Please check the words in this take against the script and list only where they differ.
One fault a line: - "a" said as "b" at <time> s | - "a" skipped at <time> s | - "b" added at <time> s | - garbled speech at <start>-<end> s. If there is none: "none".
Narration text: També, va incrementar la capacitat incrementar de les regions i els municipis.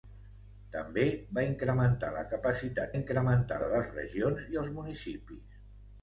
none